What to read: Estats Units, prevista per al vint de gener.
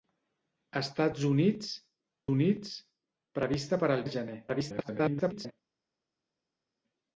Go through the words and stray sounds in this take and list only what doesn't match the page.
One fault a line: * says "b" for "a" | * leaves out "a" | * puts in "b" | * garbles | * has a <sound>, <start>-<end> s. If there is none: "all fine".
* puts in "Units"
* leaves out "vint"
* garbles